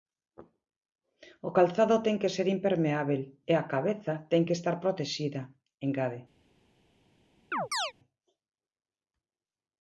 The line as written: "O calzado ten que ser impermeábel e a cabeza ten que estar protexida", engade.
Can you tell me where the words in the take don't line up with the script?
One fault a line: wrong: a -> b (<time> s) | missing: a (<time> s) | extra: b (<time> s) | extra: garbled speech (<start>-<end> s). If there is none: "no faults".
no faults